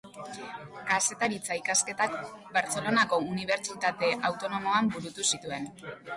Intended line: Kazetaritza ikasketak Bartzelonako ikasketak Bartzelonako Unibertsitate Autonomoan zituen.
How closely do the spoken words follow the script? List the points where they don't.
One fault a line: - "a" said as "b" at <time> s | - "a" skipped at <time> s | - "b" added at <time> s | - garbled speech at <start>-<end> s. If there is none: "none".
- "ikasketak Bartzelonako" skipped at 3.2 s
- "burutu" added at 5.0 s